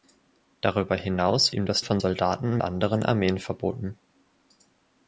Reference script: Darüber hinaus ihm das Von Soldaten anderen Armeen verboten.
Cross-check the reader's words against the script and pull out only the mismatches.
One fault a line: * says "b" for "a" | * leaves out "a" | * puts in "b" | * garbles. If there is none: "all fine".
all fine